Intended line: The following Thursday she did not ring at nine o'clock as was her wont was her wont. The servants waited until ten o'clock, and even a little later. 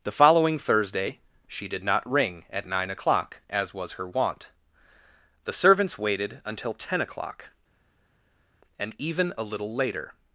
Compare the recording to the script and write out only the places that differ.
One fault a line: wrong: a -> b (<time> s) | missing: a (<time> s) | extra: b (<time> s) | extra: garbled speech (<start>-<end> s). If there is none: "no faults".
missing: was her wont (4.5 s)